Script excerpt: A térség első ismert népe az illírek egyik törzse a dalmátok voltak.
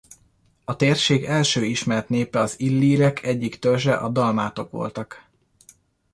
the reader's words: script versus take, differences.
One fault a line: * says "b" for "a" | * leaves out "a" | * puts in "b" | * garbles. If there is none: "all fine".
all fine